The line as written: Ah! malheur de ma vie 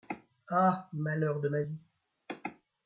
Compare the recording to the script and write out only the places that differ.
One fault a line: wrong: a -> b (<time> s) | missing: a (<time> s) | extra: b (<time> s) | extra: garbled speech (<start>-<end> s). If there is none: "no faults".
no faults